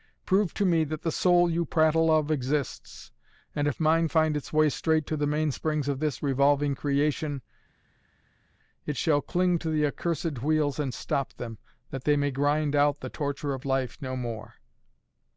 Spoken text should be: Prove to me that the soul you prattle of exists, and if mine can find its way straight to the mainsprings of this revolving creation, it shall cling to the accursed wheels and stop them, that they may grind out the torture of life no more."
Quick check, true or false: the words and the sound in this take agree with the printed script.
false